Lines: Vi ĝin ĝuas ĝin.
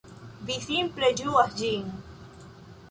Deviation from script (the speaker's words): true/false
true